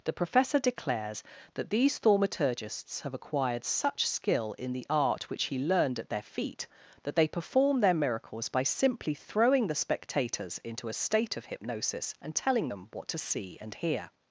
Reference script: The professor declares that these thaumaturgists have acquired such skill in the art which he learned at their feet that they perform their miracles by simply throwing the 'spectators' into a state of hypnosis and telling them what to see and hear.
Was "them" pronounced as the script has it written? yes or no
yes